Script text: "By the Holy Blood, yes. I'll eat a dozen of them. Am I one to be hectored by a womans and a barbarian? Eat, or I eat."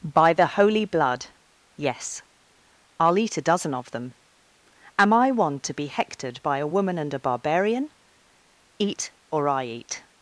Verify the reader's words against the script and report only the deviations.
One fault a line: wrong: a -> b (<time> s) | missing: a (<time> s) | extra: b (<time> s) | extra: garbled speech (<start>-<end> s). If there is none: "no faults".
wrong: womans -> woman (6.7 s)